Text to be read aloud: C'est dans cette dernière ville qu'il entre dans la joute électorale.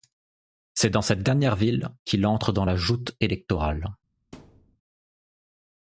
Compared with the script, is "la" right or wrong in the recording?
right